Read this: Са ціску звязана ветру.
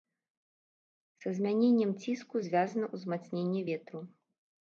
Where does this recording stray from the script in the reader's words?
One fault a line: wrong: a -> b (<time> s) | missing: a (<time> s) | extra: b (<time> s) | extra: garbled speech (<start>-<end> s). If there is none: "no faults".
extra: змяненнем (1.4 s)
extra: ўзмацненне (2.9 s)